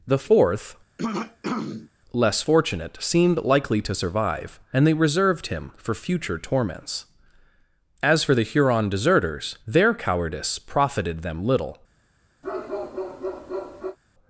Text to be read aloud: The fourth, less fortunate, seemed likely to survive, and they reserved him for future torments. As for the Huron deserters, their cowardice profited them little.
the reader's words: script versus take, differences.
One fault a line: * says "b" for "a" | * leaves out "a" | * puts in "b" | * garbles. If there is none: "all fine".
all fine